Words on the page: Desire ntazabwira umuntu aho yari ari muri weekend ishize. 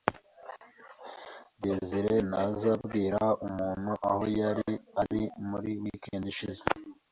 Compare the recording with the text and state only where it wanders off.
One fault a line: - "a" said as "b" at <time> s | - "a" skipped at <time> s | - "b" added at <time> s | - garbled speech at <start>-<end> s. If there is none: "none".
none